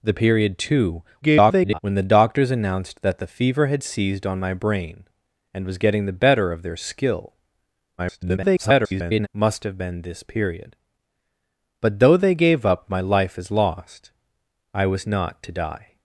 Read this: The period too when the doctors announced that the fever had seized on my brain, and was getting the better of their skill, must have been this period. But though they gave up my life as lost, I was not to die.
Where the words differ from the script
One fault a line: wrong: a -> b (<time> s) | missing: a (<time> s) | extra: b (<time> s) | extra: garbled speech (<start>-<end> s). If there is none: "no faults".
extra: garbled speech (1.2-1.8 s)
extra: garbled speech (8.0-9.3 s)